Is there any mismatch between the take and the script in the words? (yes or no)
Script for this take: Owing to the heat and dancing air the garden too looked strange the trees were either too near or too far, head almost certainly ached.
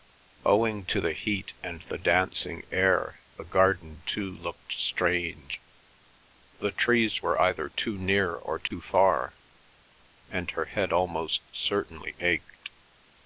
yes